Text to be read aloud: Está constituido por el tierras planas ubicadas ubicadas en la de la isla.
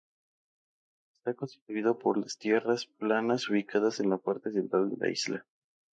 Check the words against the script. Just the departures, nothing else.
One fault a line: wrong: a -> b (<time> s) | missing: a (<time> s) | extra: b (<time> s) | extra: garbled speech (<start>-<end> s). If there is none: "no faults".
wrong: el -> las (2.2 s)
missing: ubicadas (4.0 s)
extra: parte central (4.2 s)